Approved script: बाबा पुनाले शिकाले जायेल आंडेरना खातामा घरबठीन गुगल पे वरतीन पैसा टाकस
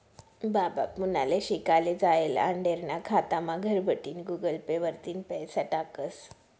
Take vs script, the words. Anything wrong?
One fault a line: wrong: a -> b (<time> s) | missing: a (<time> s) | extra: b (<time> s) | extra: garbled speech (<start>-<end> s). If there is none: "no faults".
no faults